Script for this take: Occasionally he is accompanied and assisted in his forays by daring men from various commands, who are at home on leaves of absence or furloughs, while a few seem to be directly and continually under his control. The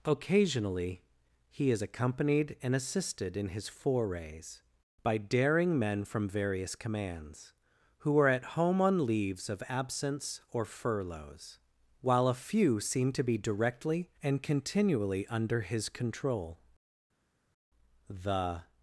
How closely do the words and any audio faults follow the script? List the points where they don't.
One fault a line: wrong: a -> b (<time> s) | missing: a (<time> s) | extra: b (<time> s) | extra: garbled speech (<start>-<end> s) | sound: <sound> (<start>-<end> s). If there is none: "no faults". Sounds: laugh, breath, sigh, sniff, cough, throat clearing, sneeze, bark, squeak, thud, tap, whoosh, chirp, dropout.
no faults